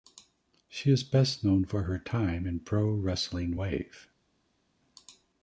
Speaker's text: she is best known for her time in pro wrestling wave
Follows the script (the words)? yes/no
yes